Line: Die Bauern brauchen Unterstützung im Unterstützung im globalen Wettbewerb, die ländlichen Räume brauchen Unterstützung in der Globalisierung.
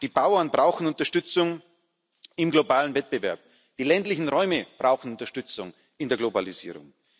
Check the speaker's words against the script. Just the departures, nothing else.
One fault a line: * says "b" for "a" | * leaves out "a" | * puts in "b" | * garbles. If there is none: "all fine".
* leaves out "Unterstützung im"